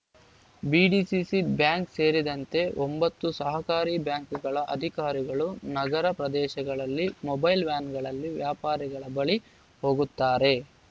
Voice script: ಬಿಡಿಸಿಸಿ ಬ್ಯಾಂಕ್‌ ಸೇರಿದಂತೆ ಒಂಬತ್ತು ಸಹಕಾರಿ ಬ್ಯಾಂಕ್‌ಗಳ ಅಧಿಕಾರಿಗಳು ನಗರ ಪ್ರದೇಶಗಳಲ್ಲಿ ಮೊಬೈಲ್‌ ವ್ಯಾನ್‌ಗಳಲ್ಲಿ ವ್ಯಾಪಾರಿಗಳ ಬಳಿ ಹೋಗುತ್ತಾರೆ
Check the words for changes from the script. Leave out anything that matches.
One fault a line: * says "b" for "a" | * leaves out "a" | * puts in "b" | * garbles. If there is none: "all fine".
all fine